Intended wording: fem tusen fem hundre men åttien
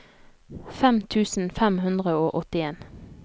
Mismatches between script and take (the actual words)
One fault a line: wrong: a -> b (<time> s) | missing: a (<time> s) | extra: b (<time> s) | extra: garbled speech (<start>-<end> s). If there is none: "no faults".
wrong: men -> og (2.2 s)